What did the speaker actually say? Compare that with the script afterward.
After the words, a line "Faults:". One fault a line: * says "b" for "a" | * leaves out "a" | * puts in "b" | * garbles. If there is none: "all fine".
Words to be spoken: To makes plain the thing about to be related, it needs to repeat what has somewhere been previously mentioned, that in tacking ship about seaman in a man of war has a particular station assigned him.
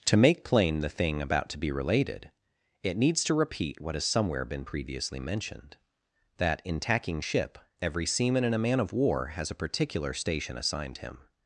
To make plain the thing about to be related, it needs to repeat what has somewhere been previously mentioned, that in tacking ship every seaman in a man of war has a particular station assigned him.
Faults:
* says "make" for "makes"
* says "every" for "about"